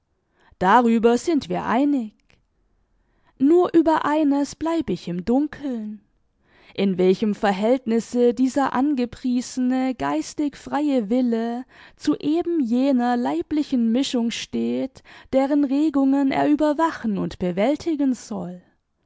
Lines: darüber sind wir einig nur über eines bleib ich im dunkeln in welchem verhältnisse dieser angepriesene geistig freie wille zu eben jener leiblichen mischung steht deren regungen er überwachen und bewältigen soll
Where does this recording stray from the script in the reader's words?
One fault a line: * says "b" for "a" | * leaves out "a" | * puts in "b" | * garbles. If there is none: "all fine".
all fine